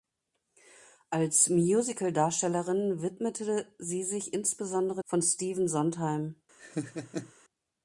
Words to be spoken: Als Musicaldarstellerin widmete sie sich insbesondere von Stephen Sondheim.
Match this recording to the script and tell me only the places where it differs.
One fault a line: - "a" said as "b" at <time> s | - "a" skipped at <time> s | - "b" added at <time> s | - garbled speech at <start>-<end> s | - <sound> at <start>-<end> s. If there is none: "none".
- laugh at 6.6-7.3 s